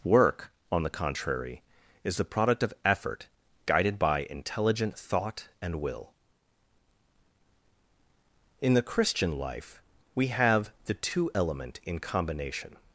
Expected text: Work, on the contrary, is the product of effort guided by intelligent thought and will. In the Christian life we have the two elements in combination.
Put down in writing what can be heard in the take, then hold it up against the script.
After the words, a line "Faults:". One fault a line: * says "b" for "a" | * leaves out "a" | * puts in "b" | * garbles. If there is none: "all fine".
Work, on the contrary, is the product of effort guided by intelligent thought and will. In the Christian life we have the two element in combination.
Faults:
* says "element" for "elements"